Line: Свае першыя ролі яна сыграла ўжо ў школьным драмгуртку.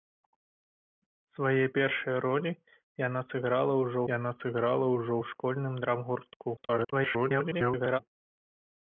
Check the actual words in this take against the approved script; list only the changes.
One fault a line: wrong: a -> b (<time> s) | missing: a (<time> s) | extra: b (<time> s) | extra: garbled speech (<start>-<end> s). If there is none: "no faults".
extra: яна сыграла ўжо (4.1 s)
extra: garbled speech (6.6-8.0 s)